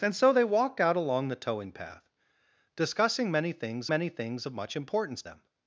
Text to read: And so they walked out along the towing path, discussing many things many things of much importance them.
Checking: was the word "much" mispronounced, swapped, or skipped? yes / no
no